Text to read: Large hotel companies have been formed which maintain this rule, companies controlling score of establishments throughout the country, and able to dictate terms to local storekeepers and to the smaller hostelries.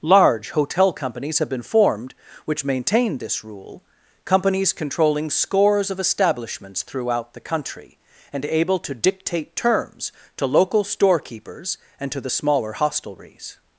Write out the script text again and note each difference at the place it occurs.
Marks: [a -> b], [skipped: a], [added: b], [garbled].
Large hotel companies have been formed which maintain this rule, companies controlling [score -> scores] of establishments throughout the country, and able to dictate terms to local storekeepers and to the smaller hostelries.